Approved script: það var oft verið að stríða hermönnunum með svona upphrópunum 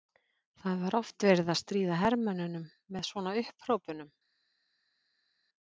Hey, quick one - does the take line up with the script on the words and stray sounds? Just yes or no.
yes